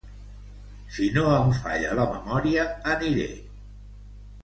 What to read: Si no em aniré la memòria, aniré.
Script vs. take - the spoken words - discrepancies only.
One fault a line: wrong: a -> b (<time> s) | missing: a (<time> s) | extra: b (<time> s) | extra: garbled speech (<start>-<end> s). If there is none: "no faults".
wrong: aniré -> falla (1.6 s)